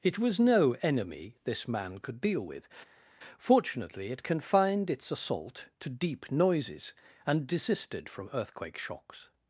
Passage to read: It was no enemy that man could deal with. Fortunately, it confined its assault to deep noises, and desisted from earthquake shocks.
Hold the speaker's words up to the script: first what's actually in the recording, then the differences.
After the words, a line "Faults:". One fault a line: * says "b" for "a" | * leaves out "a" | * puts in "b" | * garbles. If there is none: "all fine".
It was no enemy this man could deal with. Fortunately, it confined its assault to deep noises, and desisted from earthquake shocks.
Faults:
* says "this" for "that"